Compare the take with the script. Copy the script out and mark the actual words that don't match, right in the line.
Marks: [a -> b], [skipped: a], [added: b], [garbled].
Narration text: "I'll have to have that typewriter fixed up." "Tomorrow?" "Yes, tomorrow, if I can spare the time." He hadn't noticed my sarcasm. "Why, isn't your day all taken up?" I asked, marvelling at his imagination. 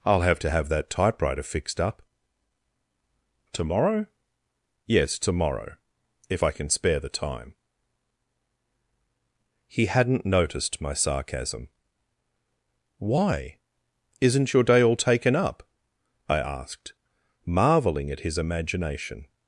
"I'll have to have that typewriter fixed up." "Tomorrow?" "Yes, tomorrow, if I can spare the time." He hadn't noticed my sarcasm. "Why, isn't your day all taken up?" I asked, marvelling at his imagination.